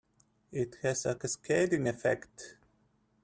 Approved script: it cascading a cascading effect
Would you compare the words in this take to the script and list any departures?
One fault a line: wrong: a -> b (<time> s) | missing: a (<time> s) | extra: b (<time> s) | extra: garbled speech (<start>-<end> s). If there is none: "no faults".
wrong: cascading -> has (0.8 s)